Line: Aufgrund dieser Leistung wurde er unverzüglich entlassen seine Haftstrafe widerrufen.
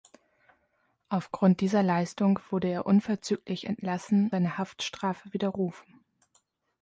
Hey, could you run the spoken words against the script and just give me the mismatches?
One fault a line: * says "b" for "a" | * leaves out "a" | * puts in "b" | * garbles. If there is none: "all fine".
all fine